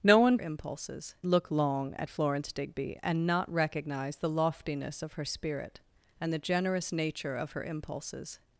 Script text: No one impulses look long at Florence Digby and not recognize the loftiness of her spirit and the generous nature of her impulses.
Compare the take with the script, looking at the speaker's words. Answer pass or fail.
pass